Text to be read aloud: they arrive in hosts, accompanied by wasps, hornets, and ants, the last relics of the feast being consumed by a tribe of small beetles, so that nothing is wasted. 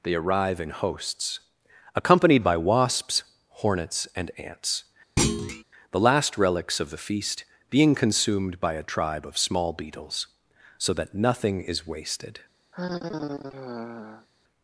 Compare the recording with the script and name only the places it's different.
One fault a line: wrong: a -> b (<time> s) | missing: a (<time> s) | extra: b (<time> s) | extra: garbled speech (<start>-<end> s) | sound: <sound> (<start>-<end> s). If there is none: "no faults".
sound: thud (5.2-5.6 s)
sound: sigh (12.7-14.3 s)